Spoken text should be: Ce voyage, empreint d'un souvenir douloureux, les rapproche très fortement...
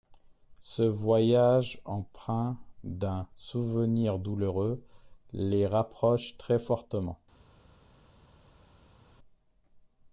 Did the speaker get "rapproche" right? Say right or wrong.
right